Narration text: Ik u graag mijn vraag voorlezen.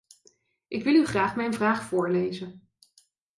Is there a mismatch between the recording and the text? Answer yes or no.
yes